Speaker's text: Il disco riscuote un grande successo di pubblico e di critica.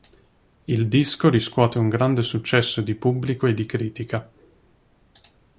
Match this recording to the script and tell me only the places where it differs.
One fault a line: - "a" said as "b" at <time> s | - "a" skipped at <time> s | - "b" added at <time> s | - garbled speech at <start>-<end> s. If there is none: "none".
none